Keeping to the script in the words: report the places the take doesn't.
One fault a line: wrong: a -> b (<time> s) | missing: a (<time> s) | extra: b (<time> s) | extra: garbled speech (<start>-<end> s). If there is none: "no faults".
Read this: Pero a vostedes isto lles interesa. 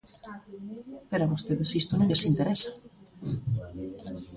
extra: non (1.9 s)